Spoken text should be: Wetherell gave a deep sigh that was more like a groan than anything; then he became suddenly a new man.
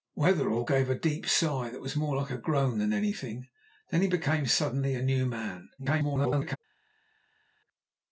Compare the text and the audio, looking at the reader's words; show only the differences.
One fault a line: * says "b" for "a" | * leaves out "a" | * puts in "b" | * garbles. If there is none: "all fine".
* garbles